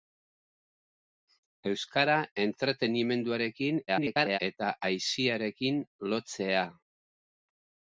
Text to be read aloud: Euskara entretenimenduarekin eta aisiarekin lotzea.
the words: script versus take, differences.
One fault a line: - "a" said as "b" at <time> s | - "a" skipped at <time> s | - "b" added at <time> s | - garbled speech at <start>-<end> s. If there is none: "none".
- garbled speech at 3.9-4.4 s